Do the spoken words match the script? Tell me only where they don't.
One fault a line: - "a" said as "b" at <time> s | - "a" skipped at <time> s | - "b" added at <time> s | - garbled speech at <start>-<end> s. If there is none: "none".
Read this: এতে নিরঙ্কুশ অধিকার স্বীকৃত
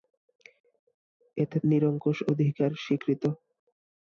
none